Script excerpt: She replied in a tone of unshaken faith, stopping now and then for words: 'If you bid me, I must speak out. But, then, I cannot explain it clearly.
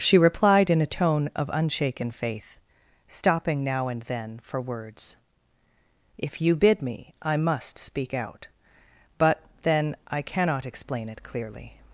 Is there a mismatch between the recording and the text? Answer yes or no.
no